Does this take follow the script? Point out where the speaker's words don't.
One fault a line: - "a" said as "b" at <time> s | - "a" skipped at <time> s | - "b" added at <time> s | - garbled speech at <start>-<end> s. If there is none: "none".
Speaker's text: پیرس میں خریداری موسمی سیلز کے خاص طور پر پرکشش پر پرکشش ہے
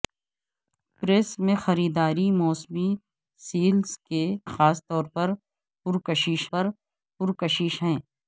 none